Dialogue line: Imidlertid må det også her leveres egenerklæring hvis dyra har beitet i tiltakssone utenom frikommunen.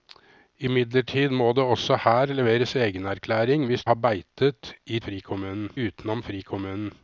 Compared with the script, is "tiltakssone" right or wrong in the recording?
wrong